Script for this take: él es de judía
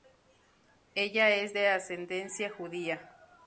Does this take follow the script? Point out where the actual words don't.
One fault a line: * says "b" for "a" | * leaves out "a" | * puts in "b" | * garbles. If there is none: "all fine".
* says "ella" for "él"
* puts in "ascendencia"